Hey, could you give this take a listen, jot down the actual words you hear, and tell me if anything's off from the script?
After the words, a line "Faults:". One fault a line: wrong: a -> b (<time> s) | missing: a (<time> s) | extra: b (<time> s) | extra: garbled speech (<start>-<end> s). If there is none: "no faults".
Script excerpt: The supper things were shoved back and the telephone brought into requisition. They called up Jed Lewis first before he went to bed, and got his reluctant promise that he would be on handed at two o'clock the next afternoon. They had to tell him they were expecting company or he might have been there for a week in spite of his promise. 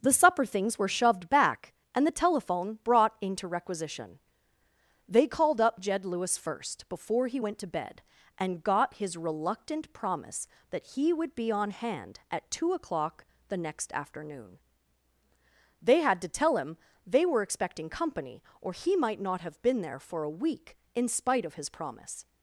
The supper things were shoved back and the telephone brought into requisition. They called up Jed Lewis first before he went to bed, and got his reluctant promise that he would be on hand at two o'clock the next afternoon. They had to tell him they were expecting company or he might not have been there for a week in spite of his promise.
Faults:
wrong: handed -> hand (11.7 s)
extra: not (19.2 s)